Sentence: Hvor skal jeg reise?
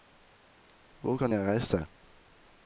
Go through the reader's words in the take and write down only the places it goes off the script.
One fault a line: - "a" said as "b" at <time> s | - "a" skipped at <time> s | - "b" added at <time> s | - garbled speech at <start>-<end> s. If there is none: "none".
- "skal" said as "kan" at 1.1 s